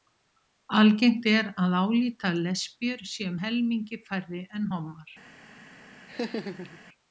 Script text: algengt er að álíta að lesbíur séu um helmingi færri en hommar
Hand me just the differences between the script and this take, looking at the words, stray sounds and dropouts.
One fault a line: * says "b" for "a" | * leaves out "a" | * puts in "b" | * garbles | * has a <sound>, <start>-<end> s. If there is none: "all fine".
* has a laugh, 6.1-6.8 s